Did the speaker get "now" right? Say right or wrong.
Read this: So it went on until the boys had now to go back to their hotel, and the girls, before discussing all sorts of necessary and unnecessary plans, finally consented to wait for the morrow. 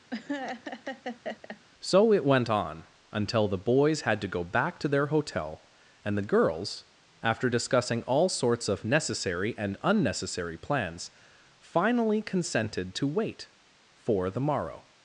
wrong